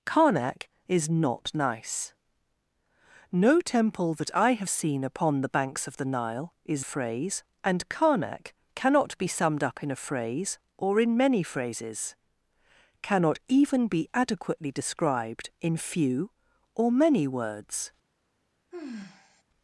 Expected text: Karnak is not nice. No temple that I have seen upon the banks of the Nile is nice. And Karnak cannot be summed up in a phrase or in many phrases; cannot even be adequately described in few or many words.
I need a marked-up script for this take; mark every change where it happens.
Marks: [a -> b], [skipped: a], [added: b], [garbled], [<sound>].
Karnak is not nice. No temple that I have seen upon the banks of the Nile is [nice. -> phrase] And Karnak cannot be summed up in a phrase or in many phrases; cannot even be adequately described in few or many words. [sigh]